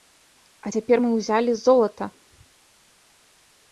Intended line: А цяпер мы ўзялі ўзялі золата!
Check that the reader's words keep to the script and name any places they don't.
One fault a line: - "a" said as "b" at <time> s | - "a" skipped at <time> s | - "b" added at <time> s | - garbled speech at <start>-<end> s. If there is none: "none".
- "ўзялі" skipped at 1.5 s